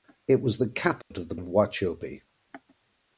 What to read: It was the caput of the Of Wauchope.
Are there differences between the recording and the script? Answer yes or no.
no